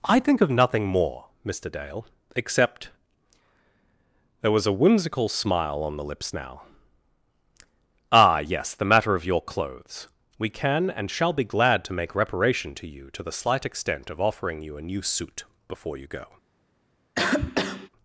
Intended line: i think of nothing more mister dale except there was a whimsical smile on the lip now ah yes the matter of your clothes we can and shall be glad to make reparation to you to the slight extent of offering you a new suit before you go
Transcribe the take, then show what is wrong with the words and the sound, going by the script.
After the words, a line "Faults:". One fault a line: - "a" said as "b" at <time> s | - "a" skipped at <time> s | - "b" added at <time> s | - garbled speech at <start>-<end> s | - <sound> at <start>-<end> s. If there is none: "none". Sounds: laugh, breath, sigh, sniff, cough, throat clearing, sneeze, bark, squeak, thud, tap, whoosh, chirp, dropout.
i think of nothing more mister dale except there was a whimsical smile on the lips now ah yes the matter of your clothes we can and shall be glad to make reparation to you to the slight extent of offering you a new suit before you go
Faults:
- "lip" said as "lips" at 6.0 s
- cough at 17.1-17.9 s